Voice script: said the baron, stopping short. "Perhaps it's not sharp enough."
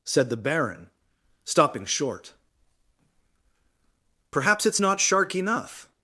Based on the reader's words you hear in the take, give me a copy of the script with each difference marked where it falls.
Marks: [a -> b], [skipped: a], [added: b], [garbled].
said the baron, stopping short. "Perhaps it's not [sharp -> shark] enough."